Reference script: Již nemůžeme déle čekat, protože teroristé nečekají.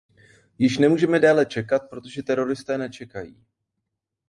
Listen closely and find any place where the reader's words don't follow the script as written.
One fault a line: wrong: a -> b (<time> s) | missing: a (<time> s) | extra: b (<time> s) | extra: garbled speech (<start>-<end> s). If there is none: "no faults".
no faults